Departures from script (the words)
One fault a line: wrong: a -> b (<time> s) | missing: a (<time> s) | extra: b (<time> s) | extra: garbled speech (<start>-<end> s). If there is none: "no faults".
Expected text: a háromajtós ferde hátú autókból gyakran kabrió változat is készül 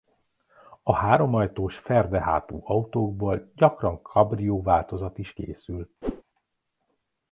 no faults